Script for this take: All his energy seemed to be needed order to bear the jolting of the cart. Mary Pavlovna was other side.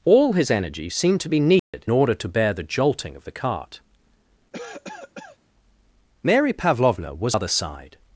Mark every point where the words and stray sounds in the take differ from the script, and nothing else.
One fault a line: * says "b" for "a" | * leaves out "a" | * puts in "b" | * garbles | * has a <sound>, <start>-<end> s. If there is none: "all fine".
* has a dropout, 1.6-1.7 s
* has a cough, 4.5-5.4 s